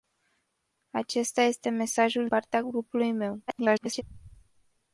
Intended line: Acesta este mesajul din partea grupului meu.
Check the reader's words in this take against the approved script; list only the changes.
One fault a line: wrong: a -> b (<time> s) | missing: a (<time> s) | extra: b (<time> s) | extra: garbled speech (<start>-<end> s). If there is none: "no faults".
missing: din (2.3 s)
extra: garbled speech (3.5-4.0 s)